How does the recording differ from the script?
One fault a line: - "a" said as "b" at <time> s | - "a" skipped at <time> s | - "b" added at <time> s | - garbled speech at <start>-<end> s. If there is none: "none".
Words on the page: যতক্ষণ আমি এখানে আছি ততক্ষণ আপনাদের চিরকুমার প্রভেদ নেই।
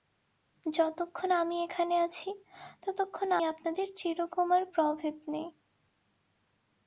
none